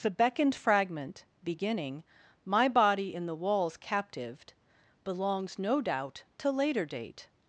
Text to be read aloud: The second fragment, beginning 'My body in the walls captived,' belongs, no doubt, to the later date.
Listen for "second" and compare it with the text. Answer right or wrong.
wrong